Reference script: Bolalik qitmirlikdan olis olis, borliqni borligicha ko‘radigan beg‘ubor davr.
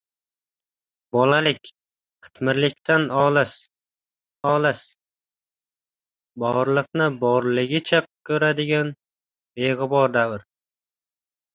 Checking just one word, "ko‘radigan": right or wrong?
right